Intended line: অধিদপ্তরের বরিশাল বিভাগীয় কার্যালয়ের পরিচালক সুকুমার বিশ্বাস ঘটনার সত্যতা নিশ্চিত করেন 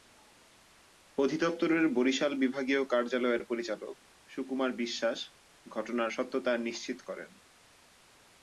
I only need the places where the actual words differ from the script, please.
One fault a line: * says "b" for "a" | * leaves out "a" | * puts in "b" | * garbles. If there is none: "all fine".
all fine